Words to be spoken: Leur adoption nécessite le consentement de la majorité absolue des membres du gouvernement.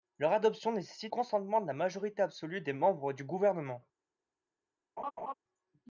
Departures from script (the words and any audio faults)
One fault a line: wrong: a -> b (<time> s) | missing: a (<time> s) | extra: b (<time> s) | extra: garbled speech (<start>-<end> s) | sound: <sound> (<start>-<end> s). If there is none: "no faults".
missing: le (1.1 s)
sound: laugh (5.0-5.3 s)